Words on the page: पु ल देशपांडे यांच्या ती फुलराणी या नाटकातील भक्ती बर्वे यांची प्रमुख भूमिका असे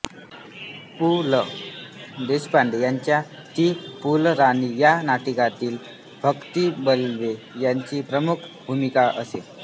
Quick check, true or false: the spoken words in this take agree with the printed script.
true